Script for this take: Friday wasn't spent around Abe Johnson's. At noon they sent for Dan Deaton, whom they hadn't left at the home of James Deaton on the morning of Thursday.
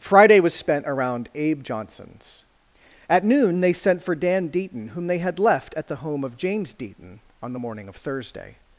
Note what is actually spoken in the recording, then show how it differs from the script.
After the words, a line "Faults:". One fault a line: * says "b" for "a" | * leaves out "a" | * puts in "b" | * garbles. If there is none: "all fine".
Friday was spent around Abe Johnson's. At noon they sent for Dan Deaton, whom they had left at the home of James Deaton on the morning of Thursday.
Faults:
* says "was" for "wasn't"
* says "had" for "hadn't"